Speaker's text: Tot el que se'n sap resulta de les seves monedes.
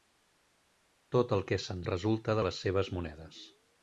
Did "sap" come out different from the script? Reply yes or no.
yes